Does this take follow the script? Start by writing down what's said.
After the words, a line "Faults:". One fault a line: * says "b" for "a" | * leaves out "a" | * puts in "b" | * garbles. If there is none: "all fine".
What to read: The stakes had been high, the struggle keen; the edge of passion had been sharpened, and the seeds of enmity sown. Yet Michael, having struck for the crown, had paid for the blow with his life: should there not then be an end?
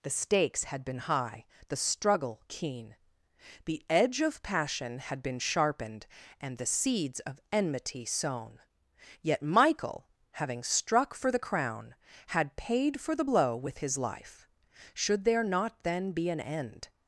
The stakes had been high, the struggle keen; the edge of passion had been sharpened, and the seeds of enmity sown. Yet Michael, having struck for the crown, had paid for the blow with his life: should there not then be an end?
Faults:
all fine